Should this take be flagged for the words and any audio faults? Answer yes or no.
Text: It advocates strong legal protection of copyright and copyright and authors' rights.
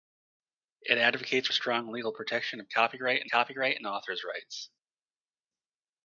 no